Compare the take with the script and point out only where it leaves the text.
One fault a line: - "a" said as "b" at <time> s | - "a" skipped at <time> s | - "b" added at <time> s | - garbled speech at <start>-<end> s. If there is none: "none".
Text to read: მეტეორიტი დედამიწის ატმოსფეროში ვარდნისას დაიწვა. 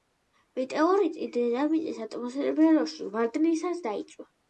none